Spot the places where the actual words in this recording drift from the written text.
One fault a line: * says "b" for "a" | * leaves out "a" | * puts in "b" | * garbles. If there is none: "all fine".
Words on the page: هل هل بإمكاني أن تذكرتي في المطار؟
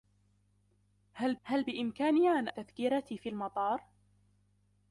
all fine